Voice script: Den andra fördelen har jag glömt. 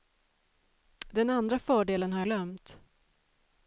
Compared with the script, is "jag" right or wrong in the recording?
wrong